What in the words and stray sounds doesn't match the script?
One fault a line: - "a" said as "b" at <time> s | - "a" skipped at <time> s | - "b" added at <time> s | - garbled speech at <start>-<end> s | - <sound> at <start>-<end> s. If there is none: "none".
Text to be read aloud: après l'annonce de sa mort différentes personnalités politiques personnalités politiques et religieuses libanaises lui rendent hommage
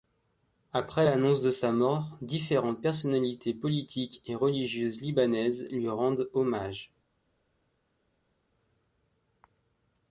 - "personnalités politiques" skipped at 4.2 s